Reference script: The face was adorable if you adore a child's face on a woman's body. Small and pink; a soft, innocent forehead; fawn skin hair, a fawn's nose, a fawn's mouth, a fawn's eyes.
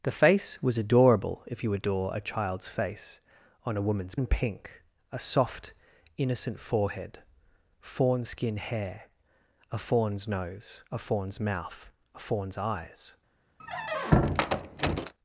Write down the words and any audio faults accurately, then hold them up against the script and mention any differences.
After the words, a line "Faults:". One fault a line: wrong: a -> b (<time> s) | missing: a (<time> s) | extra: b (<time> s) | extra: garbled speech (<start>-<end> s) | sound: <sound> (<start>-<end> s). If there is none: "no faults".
The face was adorable if you adore a child's face on a woman's and pink; a soft, innocent forehead; fawn skin hair, a fawn's nose, a fawn's mouth, a fawn's eyes.
Faults:
missing: body Small (4.2 s)
sound: squeak (13.6-15.1 s)